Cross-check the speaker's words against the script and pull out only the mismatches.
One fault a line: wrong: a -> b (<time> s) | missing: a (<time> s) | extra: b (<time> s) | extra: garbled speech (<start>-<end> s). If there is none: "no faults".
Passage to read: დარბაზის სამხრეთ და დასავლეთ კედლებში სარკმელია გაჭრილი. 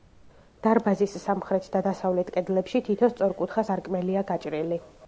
extra: თითო სწორკუთხა (2.9 s)